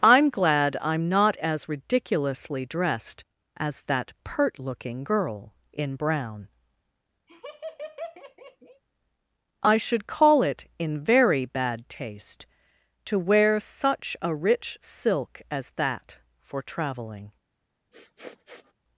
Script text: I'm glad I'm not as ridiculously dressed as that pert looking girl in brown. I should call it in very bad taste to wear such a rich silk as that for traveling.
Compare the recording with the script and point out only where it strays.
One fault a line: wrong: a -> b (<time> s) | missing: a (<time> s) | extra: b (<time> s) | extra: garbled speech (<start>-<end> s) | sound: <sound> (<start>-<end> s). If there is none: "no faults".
sound: laugh (7.3-8.8 s)
sound: sniff (17.9-18.7 s)